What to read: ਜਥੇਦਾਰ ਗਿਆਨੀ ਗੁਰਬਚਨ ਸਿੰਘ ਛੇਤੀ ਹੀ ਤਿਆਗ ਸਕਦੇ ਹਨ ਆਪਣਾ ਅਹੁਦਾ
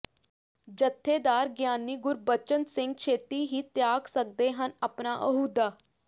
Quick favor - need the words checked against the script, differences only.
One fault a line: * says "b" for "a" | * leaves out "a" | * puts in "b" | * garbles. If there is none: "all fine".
all fine